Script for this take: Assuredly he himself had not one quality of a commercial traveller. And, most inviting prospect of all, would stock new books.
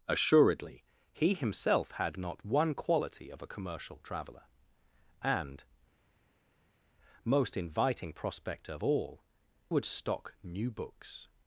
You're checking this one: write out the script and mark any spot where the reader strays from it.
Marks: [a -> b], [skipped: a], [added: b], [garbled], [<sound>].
Assuredly he himself had not one quality of a commercial traveller. And, most inviting prospect of all, would stock new books.